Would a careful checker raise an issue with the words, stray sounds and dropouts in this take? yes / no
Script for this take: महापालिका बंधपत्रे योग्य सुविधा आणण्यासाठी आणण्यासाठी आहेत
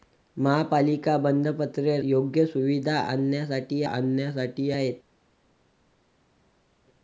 no